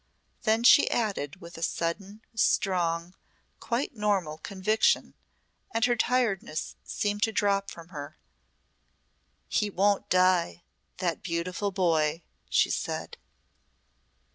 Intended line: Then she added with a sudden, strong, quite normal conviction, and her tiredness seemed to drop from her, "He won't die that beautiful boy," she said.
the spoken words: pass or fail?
pass